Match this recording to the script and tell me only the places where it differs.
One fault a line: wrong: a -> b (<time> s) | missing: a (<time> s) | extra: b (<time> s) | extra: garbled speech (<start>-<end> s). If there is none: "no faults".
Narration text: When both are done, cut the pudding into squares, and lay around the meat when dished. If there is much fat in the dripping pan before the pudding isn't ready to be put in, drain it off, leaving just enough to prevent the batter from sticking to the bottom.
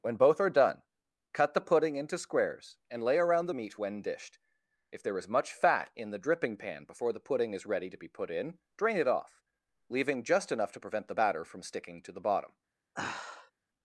wrong: isn't -> is (7.5 s)